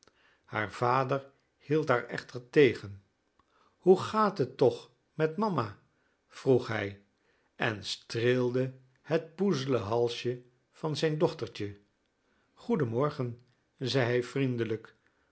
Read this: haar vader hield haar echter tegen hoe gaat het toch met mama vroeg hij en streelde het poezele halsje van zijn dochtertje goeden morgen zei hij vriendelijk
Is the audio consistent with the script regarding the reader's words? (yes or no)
yes